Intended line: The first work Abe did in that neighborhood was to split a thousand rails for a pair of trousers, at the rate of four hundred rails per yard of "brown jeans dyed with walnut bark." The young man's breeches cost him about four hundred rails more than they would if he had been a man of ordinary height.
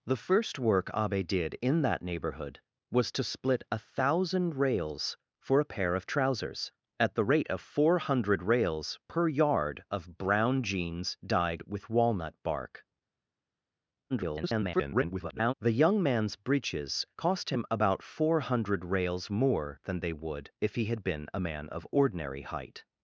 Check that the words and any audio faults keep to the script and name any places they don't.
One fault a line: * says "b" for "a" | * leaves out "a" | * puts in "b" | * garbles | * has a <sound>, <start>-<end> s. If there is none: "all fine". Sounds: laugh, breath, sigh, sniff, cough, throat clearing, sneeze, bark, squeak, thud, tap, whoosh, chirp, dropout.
* garbles